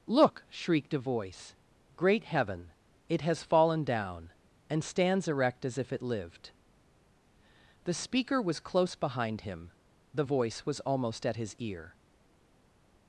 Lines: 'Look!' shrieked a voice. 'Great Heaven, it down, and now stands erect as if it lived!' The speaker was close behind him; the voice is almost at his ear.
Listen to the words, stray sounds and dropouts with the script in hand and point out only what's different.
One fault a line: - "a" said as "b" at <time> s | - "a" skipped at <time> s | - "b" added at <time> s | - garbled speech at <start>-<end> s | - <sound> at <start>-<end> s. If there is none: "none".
- "has fallen" added at 3.2 s
- "now" skipped at 4.8 s
- "is" said as "was" at 10.6 s